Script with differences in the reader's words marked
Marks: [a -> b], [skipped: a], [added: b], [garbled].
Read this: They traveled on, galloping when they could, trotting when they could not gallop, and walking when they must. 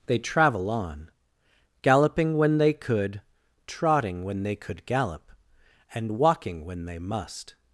They [traveled -> travel] on, galloping when they could, trotting when they could [skipped: not] gallop, and walking when they must.